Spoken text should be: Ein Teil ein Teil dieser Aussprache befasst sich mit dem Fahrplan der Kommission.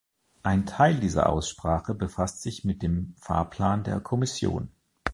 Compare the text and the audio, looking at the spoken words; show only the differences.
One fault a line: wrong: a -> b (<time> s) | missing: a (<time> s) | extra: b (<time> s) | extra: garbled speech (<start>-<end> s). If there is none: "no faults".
missing: ein Teil (1.0 s)